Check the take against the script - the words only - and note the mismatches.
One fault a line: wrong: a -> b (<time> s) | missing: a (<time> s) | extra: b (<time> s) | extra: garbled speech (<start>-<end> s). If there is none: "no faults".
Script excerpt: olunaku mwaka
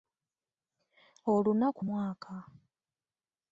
no faults